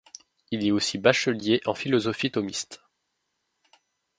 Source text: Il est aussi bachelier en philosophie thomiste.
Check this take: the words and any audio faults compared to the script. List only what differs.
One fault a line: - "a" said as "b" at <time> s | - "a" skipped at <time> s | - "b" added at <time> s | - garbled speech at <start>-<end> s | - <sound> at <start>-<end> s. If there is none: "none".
none